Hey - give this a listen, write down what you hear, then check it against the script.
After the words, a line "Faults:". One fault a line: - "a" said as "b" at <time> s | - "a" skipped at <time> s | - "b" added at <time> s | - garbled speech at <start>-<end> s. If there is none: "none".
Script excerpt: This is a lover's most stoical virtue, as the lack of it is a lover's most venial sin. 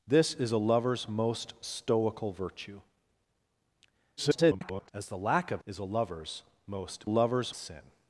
This is a lover's most stoical virtue, [garbled] as the lack of is a lover's most lover's sin.
Faults:
- garbled speech at 4.2-4.9 s
- "it" skipped at 5.6 s
- "venial" said as "lover's" at 7.0 s